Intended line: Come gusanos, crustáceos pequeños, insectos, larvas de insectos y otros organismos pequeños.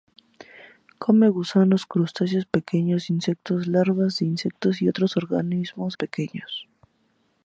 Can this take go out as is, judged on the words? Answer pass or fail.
pass